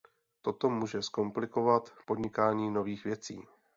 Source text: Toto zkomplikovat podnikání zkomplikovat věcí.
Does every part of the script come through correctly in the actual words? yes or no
no